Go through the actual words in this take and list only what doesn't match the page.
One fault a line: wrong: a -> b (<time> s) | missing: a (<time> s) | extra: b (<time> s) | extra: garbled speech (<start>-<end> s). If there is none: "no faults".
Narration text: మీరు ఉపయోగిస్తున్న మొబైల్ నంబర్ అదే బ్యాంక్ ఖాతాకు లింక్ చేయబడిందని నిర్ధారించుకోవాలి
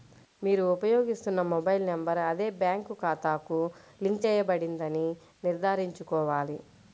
no faults